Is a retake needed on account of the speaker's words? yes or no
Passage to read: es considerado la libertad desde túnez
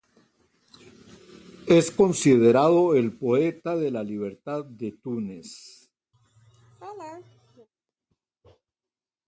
yes